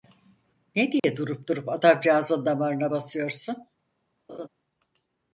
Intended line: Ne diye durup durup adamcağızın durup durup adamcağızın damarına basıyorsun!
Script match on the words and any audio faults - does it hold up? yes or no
no